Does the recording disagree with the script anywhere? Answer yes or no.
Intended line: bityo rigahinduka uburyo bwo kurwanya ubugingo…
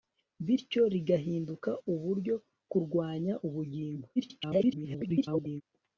yes